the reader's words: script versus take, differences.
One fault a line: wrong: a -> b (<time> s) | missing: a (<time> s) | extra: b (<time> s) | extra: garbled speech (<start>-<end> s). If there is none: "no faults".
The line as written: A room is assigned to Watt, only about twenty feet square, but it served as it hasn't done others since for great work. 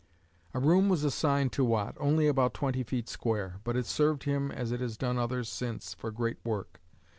wrong: is -> was (0.9 s)
extra: him (4.2 s)
wrong: hasn't -> has (4.8 s)